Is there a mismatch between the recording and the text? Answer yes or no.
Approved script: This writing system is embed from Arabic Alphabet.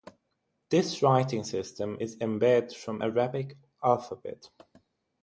no